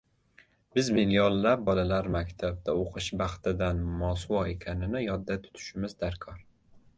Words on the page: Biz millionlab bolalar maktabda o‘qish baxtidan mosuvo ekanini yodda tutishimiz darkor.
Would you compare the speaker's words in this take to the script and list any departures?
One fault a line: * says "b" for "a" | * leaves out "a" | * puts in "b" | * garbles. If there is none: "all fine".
all fine